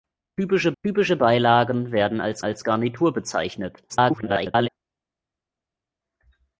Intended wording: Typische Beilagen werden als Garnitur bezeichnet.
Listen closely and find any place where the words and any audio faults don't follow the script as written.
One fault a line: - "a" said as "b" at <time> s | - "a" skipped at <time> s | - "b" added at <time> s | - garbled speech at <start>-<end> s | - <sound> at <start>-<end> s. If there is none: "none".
- "typische" added at 0.8 s
- "als" added at 2.4 s
- garbled speech at 3.9-4.7 s